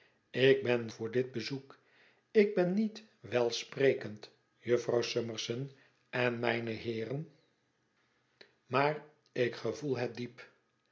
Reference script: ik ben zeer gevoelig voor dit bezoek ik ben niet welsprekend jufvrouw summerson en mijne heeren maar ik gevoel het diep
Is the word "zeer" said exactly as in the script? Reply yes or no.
no